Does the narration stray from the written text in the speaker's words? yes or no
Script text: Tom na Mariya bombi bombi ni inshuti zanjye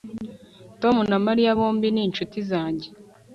yes